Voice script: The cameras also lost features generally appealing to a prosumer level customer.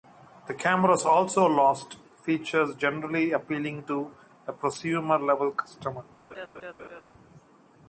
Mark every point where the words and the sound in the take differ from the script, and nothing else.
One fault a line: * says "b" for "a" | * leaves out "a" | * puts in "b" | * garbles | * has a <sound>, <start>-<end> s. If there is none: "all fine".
* has a laugh, 6.3-7.0 s